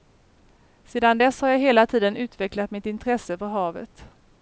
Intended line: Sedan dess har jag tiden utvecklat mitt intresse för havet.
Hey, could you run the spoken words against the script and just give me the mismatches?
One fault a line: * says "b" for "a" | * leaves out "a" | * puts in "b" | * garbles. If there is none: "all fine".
* puts in "hela"